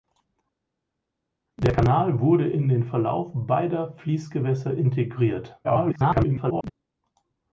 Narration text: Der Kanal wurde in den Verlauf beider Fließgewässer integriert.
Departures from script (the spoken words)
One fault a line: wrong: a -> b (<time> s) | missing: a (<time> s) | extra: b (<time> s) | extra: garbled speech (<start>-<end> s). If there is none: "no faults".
extra: garbled speech (5.6-6.7 s)